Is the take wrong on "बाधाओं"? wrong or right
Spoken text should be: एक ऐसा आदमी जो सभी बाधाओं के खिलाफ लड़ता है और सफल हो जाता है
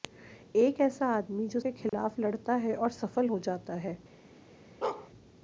wrong